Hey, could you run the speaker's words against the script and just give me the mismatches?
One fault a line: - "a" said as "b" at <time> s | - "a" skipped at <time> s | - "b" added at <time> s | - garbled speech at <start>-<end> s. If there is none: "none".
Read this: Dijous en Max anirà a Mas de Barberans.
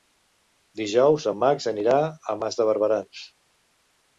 none